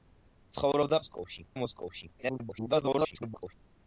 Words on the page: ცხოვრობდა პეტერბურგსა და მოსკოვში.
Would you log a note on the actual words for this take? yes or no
yes